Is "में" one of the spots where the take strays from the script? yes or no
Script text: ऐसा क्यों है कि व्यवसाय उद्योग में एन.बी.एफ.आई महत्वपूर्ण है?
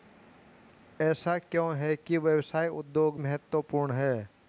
yes